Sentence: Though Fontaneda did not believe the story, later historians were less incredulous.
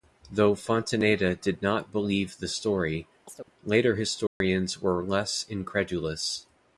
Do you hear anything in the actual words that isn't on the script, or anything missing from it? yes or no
no